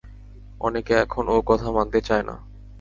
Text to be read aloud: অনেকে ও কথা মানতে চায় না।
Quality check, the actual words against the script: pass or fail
fail